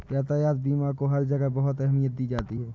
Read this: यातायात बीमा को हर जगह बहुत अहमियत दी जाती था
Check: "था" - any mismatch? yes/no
yes